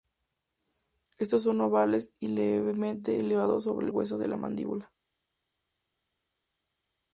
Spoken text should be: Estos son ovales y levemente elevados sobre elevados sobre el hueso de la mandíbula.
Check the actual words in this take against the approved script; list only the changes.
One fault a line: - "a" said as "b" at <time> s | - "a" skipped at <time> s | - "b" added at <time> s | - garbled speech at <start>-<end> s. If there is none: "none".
- "elevados sobre" skipped at 3.9 s